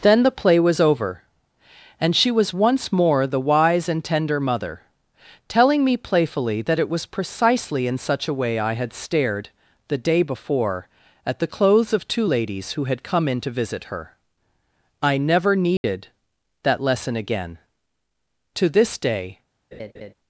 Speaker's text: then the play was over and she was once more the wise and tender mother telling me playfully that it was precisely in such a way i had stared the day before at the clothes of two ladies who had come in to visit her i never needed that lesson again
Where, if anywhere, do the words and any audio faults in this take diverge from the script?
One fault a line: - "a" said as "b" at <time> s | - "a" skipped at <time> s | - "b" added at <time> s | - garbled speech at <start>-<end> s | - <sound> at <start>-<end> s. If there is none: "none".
- dropout at 15.8-15.8 s
- "to this day" added at 18.5 s
- laugh at 19.7-20.1 s